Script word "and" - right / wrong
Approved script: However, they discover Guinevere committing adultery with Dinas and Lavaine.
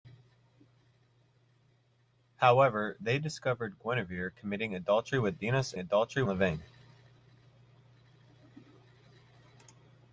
wrong